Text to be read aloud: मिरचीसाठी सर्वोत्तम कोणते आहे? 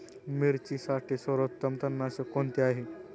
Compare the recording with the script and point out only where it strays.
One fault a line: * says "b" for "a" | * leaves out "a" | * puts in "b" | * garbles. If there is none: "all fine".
* puts in "तणनाशक"